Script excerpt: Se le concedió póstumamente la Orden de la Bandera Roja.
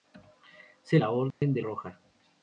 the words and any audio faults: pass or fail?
fail